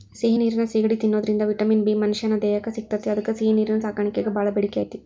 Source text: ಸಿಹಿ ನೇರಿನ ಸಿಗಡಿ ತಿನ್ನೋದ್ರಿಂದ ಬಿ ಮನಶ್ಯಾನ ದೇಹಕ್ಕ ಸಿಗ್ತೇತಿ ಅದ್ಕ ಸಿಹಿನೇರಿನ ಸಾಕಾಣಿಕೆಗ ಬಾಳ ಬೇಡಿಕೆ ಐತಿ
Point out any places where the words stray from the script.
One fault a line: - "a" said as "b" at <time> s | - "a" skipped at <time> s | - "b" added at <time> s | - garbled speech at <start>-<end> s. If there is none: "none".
- "ವಿಟಮಿನ್" added at 1.4 s